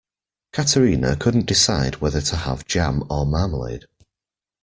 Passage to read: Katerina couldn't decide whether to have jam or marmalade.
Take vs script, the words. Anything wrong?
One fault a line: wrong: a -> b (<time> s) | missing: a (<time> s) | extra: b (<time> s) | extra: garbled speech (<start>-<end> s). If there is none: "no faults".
no faults